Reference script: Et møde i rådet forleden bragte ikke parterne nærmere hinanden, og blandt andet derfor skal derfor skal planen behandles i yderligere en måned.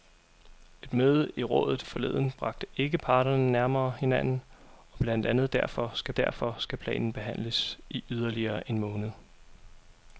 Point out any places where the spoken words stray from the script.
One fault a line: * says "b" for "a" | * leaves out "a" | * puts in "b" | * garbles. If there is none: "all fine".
all fine